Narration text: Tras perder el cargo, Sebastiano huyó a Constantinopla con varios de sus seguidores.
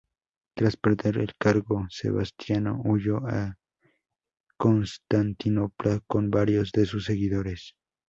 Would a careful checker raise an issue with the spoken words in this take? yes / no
no